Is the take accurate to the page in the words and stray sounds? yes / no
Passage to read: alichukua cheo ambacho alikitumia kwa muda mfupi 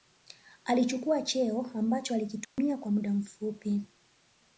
no